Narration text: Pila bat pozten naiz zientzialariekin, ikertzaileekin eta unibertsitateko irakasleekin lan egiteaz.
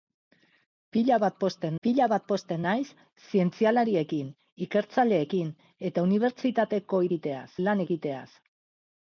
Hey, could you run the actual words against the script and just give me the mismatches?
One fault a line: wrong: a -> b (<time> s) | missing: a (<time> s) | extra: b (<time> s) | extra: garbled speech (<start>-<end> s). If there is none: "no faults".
extra: pila bat pozten (1.9 s)
wrong: irakasleekin -> egiteaz (7.1 s)